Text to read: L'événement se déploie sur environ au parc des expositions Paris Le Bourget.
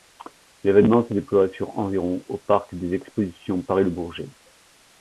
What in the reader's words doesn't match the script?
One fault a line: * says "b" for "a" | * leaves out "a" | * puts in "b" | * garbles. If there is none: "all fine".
all fine